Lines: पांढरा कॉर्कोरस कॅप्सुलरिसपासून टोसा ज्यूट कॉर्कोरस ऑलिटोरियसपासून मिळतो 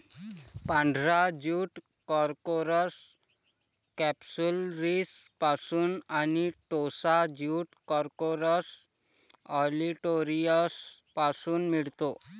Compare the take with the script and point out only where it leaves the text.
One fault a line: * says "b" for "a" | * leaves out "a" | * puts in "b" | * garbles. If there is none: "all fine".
* puts in "ज्यूट"
* puts in "आणि"